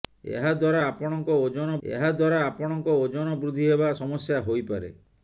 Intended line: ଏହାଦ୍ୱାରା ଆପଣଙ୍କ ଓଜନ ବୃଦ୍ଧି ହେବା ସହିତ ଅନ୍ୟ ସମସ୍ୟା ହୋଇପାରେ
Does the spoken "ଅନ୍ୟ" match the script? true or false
false